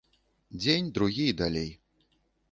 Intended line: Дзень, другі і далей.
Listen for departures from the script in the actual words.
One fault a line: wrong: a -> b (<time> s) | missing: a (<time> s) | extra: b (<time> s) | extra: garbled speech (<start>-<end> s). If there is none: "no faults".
no faults